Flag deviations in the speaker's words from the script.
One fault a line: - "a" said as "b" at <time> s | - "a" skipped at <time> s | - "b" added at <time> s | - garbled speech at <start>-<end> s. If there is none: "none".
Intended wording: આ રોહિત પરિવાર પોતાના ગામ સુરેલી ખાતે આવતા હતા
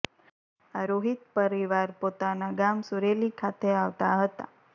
none